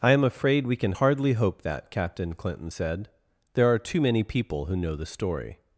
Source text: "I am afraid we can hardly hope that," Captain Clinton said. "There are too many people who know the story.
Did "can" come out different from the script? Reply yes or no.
no